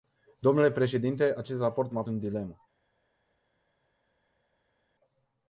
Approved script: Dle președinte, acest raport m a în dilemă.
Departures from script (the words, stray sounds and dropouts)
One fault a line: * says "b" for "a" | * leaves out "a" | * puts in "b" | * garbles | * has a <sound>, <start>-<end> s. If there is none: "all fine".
all fine